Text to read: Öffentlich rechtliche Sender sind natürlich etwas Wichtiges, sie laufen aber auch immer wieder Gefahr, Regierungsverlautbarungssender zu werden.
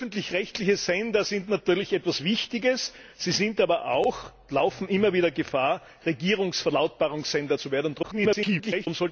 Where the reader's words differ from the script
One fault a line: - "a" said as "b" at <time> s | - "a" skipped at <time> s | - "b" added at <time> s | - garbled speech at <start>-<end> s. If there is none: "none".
- garbled speech at 8.0-8.9 s